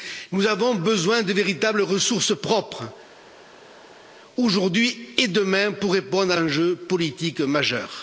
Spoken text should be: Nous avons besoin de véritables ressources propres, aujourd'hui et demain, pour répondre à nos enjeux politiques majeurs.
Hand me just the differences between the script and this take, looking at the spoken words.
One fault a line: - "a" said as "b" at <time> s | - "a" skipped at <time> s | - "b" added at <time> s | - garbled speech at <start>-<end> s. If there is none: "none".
- "nos" skipped at 6.4 s